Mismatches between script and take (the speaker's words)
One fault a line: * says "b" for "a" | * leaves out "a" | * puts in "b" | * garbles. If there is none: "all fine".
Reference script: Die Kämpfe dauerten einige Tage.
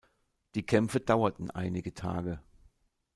all fine